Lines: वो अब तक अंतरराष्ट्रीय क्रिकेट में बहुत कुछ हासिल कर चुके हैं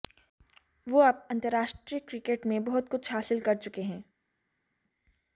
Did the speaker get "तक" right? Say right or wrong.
wrong